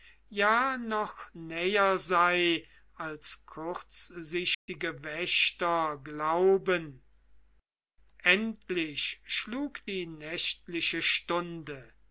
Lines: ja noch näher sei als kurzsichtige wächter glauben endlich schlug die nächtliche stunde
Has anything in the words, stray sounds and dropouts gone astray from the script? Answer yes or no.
yes